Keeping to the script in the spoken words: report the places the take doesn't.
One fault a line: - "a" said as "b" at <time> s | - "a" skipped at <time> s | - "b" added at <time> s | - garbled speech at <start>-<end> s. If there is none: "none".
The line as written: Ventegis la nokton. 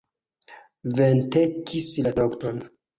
none